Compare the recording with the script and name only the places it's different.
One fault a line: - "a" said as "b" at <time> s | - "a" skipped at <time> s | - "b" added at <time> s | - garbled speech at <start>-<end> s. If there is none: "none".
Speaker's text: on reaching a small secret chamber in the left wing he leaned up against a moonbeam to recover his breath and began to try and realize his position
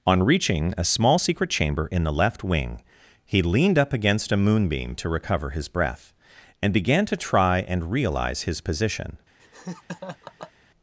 none